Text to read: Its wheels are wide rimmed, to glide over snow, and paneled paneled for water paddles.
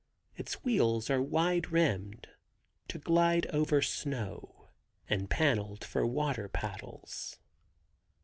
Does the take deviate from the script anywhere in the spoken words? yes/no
yes